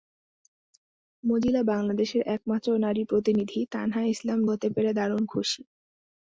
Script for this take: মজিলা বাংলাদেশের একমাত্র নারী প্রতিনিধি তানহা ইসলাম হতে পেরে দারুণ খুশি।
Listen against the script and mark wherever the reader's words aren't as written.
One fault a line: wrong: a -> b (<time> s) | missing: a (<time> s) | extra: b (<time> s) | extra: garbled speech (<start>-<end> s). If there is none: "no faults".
no faults